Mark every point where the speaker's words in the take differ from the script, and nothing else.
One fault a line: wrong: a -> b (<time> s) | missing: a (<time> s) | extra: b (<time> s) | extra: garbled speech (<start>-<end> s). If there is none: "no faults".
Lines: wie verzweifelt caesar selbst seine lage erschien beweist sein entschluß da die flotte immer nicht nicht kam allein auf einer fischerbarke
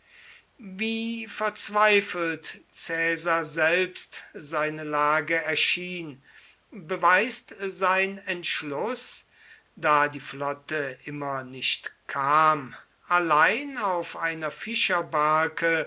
missing: nicht (11.9 s)